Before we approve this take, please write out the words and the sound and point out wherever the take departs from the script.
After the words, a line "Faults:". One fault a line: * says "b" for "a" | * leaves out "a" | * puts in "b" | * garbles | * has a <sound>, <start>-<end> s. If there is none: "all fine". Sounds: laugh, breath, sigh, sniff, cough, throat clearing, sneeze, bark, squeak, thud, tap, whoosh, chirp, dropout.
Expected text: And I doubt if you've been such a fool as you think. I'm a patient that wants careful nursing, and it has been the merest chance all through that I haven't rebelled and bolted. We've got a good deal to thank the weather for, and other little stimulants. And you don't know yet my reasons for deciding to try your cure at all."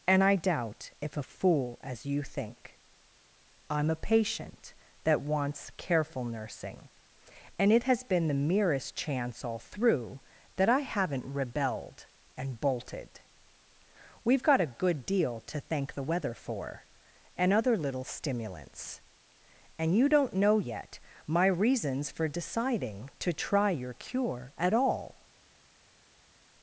And I doubt if a fool as you think. I'm a patient that wants careful nursing, and it has been the merest chance all through that I haven't rebelled and bolted. We've got a good deal to thank the weather for, and other little stimulants. And you don't know yet my reasons for deciding to try your cure at all."
Faults:
* leaves out "you've been such"